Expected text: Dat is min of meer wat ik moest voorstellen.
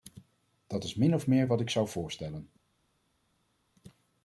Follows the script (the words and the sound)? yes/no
no